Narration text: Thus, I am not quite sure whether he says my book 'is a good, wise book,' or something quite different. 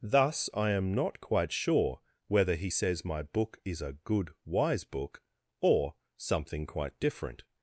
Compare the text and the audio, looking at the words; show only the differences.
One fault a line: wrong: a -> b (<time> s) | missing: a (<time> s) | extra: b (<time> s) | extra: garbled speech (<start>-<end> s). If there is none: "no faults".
no faults